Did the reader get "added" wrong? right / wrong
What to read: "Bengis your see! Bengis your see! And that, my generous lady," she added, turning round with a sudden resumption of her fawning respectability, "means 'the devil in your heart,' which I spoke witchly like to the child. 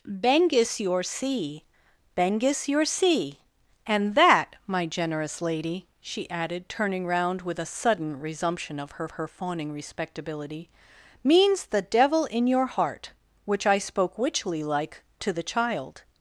right